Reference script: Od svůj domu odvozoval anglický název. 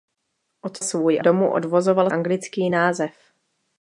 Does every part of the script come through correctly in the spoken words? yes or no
yes